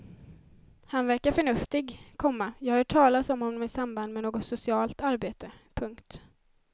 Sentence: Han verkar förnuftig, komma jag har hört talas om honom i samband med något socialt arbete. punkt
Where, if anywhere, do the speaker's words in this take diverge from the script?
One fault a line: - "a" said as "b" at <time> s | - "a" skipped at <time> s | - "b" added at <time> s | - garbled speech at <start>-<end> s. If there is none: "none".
none